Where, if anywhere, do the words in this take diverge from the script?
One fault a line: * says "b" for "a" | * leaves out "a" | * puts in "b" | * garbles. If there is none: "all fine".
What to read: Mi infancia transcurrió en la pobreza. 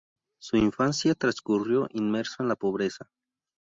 * says "Su" for "Mi"
* puts in "inmerso"